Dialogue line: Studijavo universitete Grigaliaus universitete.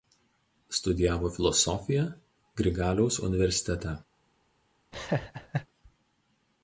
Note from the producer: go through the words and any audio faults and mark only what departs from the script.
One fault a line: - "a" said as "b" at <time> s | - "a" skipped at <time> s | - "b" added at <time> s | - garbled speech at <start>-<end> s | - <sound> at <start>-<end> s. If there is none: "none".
- "universitete" said as "filosofiją" at 1.4 s
- laugh at 4.9-5.7 s